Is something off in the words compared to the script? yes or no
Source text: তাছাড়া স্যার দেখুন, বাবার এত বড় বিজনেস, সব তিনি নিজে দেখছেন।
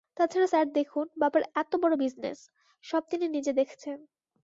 no